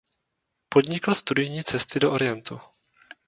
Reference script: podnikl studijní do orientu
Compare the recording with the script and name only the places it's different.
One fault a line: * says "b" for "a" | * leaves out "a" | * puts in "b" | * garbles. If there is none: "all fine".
* puts in "cesty"